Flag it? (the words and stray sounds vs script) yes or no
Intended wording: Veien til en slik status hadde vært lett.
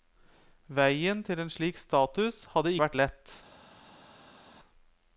no